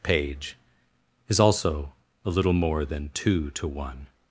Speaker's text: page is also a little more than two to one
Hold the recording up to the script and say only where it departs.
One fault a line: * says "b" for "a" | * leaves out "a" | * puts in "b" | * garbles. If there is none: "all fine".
all fine